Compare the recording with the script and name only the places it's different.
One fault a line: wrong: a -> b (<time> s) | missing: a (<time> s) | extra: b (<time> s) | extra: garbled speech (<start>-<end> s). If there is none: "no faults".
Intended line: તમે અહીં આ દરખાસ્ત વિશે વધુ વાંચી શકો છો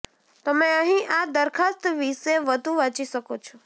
no faults